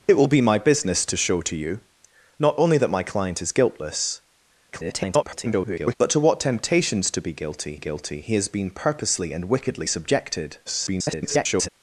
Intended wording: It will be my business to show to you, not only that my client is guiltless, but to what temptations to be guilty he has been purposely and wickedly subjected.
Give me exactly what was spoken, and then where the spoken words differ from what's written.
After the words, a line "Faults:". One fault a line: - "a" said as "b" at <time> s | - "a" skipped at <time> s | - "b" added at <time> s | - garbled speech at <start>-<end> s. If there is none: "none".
It will be my business to show to you, not only that my client is guiltless, [garbled] but to what temptations to be guilty guilty he has been purposely and wickedly subjected. [garbled]
Faults:
- garbled speech at 4.7-6.0 s
- "guilty" added at 7.8 s
- garbled speech at 10.7-11.7 s